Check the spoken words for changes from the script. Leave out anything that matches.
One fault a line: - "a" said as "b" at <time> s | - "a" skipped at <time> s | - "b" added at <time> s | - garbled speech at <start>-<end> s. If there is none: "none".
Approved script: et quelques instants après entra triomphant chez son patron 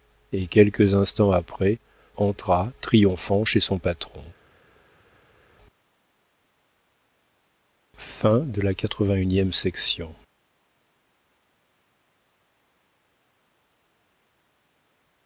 none